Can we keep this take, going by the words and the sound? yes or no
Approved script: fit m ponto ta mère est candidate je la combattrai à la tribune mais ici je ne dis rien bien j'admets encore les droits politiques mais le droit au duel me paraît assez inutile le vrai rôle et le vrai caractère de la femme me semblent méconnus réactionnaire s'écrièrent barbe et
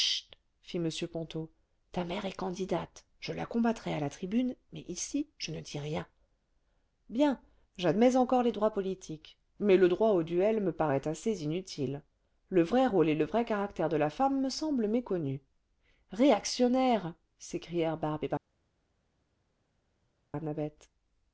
yes